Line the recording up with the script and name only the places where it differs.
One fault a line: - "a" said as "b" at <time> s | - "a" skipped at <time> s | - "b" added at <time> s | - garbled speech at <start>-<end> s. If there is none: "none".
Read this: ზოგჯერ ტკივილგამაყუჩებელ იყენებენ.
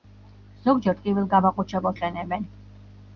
none